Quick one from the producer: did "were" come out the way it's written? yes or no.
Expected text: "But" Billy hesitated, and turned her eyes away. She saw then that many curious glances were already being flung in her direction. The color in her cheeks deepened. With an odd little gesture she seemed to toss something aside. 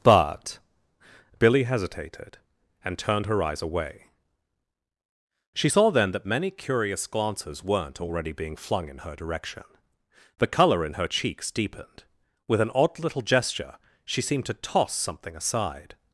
no